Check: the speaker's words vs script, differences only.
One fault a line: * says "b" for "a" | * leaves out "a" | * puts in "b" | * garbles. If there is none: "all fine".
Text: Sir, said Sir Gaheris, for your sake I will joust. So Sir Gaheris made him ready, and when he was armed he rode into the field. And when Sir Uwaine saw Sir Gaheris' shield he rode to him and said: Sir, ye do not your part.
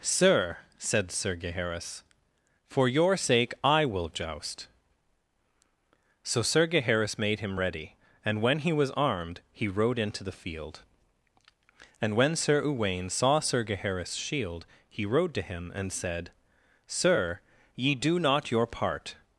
all fine